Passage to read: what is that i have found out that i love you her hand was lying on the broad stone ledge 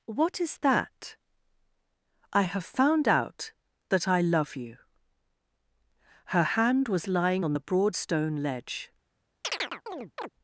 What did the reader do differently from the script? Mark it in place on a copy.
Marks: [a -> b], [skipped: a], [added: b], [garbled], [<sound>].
what is that i have found out that i love you her hand was lying on the broad stone ledge [chirp]